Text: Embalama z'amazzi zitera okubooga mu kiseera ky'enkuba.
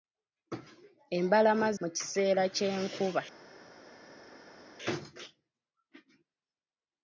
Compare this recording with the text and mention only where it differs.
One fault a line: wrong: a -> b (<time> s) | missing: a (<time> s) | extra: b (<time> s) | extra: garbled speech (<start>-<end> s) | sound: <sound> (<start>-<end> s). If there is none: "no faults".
missing: z'amazzi zitera okubooga (1.7 s)